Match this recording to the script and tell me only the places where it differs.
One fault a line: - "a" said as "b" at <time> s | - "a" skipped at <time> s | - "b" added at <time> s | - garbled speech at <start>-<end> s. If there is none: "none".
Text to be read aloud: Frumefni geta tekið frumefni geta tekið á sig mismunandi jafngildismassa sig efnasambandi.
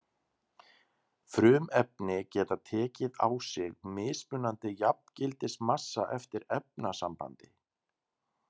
- "frumefni geta tekið" skipped at 3.2 s
- "sig" said as "eftir" at 6.2 s